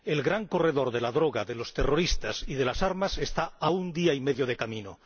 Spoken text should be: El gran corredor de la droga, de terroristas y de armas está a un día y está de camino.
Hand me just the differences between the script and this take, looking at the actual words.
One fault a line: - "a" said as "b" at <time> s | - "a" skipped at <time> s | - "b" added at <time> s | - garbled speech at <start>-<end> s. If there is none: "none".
- "los" added at 1.5 s
- "las" added at 2.6 s
- "está" said as "medio" at 4.2 s